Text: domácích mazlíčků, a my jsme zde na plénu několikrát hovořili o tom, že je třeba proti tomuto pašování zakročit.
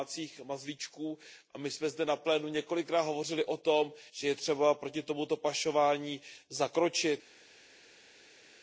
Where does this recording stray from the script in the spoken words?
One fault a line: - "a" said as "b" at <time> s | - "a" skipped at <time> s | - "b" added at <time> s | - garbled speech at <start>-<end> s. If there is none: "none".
none